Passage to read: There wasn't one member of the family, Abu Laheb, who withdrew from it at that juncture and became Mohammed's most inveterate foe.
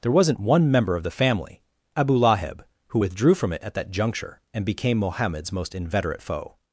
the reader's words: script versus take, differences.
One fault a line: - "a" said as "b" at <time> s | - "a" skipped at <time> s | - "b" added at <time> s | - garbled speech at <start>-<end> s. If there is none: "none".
none